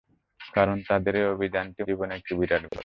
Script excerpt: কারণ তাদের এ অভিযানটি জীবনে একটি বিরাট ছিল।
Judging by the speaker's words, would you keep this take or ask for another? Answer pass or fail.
pass